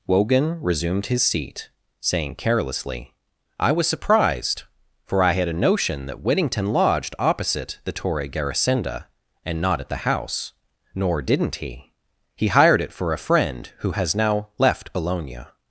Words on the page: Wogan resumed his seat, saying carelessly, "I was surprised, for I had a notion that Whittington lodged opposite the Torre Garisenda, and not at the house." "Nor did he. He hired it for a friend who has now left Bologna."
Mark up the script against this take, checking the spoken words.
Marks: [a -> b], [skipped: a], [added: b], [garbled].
Wogan resumed his seat, saying carelessly, "I was surprised, for I had a notion that Whittington lodged opposite the Torre Garisenda, and not at the house." "Nor [did -> didn't] he. He hired it for a friend who has now left Bologna."